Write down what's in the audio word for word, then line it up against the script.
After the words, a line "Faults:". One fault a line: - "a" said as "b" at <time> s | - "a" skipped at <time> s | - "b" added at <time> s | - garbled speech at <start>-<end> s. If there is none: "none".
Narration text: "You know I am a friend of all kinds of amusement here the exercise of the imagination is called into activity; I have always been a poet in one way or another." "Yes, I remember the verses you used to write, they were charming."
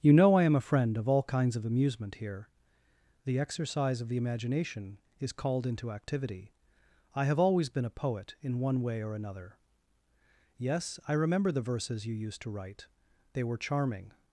"You know I am a friend of all kinds of amusement here the exercise of the imagination is called into activity; I have always been a poet in one way or another." "Yes, I remember the verses you used to write, they were charming."
Faults:
none